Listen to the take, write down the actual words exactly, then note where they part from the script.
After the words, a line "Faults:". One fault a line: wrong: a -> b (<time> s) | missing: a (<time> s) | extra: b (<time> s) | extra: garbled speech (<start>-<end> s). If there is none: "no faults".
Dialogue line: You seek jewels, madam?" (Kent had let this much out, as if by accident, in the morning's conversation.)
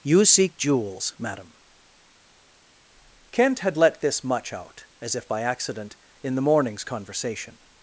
You seek jewels, madam?" (Kent had let this much out, as if by accident, in the morning's conversation.)
Faults:
no faults